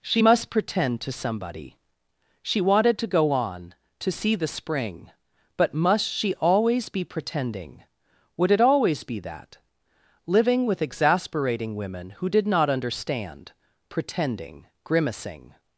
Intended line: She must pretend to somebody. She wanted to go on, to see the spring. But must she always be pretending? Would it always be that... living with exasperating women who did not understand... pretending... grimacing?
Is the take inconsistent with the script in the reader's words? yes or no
no